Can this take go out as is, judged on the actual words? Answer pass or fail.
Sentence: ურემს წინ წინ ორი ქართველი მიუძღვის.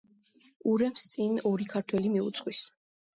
fail